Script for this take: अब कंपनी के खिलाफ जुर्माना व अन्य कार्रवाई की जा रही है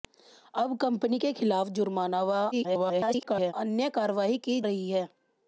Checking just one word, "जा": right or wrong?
wrong